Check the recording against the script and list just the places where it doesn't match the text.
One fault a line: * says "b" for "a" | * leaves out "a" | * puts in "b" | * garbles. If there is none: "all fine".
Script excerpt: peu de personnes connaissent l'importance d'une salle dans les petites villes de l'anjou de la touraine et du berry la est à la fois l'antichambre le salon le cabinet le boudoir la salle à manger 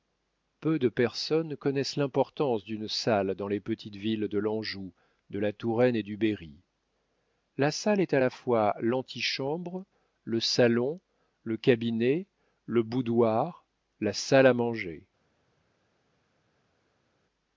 * puts in "salle"